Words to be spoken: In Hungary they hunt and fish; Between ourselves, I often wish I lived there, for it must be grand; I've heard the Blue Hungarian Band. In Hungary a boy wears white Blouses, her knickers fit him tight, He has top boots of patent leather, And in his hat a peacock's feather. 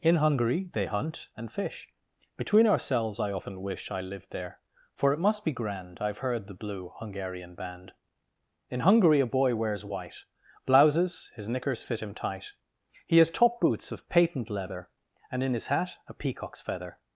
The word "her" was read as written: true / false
false